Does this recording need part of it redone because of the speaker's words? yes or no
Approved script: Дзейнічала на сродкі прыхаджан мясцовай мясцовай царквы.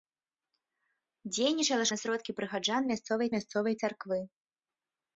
no